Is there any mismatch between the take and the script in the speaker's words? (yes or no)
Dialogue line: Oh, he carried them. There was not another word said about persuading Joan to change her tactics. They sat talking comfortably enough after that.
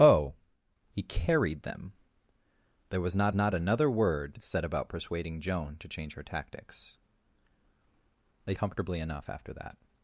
yes